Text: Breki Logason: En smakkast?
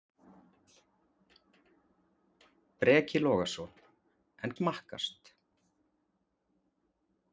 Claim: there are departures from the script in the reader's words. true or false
false